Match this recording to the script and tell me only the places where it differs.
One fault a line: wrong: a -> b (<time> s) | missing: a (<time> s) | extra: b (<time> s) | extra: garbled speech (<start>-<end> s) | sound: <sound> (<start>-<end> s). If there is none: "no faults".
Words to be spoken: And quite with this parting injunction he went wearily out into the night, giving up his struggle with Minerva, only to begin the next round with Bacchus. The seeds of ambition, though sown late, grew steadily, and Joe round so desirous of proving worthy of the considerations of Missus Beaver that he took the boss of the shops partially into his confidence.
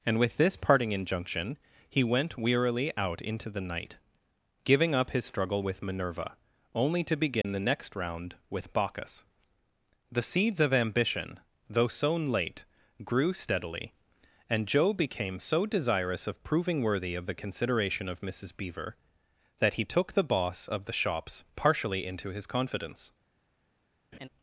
missing: quite (0.2 s)
sound: dropout (7.4-7.4 s)
wrong: round -> became (14.9 s)
wrong: considerations -> consideration (17.3 s)
sound: laugh (24.1-24.3 s)